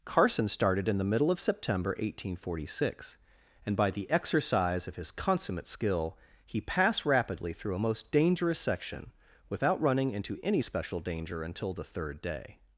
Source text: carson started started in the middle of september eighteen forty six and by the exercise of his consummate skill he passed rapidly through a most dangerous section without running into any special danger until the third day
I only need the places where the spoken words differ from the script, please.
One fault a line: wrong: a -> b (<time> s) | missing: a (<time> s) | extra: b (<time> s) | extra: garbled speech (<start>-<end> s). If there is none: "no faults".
missing: started (0.9 s)